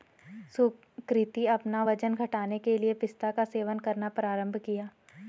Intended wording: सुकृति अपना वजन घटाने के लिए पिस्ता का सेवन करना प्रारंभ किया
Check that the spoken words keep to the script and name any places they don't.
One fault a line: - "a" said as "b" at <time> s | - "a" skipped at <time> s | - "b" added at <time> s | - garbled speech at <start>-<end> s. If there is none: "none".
none